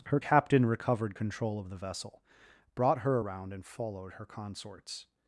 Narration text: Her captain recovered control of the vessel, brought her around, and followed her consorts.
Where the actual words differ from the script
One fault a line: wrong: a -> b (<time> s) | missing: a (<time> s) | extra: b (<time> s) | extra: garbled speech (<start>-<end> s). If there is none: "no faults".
no faults